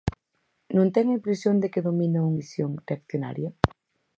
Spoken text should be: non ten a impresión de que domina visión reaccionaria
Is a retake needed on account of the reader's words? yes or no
no